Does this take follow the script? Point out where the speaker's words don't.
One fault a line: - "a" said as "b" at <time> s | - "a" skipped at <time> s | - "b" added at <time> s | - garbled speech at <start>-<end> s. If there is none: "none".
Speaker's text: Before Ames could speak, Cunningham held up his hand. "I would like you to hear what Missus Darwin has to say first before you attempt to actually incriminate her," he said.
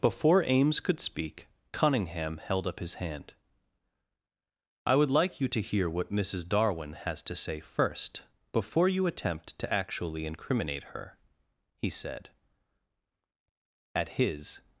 - "At his" added at 13.9 s